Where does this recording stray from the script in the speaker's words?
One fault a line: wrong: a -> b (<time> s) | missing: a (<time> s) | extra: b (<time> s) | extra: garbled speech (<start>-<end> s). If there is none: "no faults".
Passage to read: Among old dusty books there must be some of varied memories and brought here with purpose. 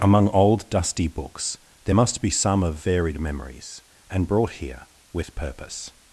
no faults